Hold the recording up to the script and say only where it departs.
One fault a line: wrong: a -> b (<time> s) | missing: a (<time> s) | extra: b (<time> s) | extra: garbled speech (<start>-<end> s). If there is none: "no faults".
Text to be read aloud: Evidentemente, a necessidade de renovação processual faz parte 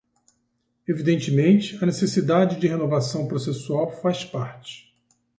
no faults